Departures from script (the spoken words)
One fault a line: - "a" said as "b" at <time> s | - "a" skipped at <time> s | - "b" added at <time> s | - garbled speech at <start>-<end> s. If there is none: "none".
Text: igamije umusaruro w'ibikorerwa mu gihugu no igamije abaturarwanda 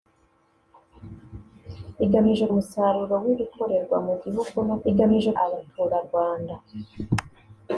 none